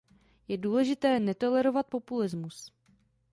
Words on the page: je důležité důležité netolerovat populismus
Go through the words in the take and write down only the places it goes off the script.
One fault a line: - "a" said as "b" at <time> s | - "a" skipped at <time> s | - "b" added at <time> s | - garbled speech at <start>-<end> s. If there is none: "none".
- "důležité" skipped at 1.2 s